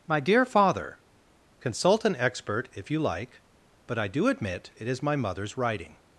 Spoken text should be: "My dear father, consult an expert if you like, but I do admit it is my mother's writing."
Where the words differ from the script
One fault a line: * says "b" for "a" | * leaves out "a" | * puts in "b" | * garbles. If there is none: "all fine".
all fine